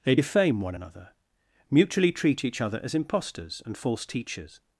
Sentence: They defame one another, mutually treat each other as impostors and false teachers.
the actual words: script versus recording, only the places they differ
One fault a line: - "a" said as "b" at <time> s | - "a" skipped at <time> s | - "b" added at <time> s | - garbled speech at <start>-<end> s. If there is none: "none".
none